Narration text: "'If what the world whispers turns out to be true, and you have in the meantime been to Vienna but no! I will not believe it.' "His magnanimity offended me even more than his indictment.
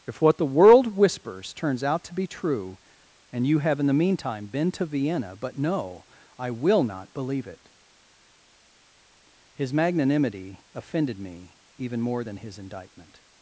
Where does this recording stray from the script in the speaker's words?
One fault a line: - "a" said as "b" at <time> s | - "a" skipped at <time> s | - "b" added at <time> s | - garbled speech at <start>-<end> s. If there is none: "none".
none